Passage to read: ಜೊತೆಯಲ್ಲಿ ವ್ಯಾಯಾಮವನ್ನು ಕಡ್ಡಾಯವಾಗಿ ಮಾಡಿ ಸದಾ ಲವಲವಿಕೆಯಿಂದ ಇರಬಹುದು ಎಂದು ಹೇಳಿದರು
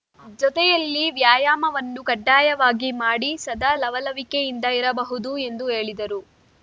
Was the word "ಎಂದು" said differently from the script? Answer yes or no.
no